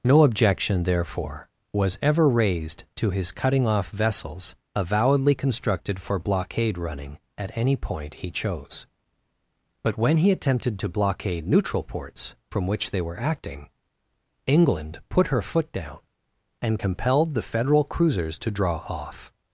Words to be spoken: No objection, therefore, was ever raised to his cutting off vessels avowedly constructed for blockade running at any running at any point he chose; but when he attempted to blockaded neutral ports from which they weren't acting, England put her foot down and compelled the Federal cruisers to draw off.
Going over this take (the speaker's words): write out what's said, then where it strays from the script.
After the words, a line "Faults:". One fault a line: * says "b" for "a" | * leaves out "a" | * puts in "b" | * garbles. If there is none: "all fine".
No objection, therefore, was ever raised to his cutting off vessels avowedly constructed for blockade running at any point he chose; but when he attempted to blockade neutral ports from which they were acting, England put her foot down and compelled the Federal cruisers to draw off.
Faults:
* leaves out "running at any"
* says "blockade" for "blockaded"
* says "were" for "weren't"